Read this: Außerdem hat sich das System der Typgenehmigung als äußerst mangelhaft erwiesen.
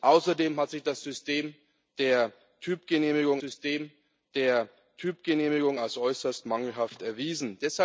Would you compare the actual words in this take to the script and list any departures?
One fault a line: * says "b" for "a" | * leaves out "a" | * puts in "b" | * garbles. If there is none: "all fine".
* puts in "System der Typgenehmigung"